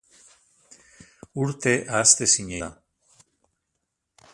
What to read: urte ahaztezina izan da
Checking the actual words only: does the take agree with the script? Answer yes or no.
no